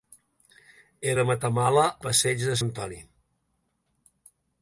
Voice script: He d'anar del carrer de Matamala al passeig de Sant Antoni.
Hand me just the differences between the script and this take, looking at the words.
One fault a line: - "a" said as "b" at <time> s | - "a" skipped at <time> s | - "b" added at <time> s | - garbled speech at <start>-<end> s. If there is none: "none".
- "d'anar del carrer" skipped at 1.1 s
- "al" skipped at 1.9 s
- "Sant" skipped at 2.6 s